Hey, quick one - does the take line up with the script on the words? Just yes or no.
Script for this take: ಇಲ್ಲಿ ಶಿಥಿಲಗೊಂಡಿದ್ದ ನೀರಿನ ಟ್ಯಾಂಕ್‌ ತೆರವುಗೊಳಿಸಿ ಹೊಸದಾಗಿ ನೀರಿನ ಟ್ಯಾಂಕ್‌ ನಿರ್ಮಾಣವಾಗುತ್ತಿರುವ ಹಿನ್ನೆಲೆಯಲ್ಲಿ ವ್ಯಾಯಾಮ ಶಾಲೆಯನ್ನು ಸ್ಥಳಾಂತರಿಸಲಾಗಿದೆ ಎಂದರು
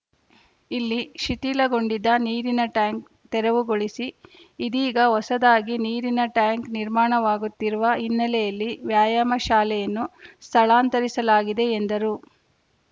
no